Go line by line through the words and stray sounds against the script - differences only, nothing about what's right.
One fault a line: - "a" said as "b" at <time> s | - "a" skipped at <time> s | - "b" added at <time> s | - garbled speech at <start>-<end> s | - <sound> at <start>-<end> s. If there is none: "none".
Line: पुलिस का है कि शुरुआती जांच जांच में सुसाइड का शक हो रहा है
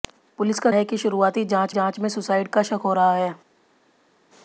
none